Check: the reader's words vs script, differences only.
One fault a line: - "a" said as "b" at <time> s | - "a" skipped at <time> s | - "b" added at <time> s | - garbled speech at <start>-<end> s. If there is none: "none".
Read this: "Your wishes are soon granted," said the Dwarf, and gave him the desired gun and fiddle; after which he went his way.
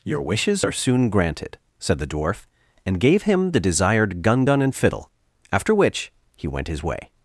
- "gun" added at 4.4 s